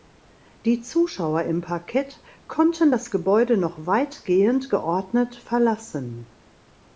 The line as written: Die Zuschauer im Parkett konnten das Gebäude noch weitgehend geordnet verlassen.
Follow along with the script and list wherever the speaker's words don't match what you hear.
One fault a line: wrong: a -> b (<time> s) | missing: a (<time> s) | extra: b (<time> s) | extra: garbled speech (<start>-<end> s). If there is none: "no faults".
no faults